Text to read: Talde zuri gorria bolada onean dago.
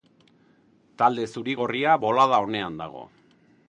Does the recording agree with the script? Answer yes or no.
yes